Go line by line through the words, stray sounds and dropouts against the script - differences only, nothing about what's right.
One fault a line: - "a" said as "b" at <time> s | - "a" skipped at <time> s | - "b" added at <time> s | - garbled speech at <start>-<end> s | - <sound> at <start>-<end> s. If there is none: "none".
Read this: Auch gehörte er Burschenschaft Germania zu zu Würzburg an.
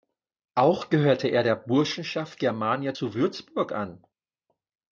- "der" added at 1.4 s
- "zu" skipped at 3.1 s